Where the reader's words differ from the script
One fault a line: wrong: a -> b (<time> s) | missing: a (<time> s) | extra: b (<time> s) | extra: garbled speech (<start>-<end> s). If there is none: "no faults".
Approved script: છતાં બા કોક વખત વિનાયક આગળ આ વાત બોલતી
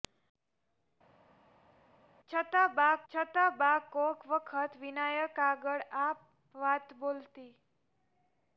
extra: છતાં બા (3.1 s)